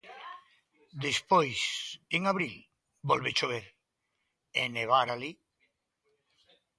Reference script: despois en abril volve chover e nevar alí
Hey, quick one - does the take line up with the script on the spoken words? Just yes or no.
yes